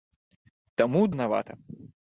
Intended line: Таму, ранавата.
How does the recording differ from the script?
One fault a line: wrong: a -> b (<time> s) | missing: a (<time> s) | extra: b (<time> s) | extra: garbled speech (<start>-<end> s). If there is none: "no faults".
no faults